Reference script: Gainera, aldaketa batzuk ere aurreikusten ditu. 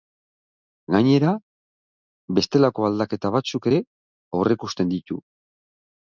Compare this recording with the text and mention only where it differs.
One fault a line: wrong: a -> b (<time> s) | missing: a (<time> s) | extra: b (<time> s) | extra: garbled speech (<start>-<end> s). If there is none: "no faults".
extra: bestelako (2.4 s)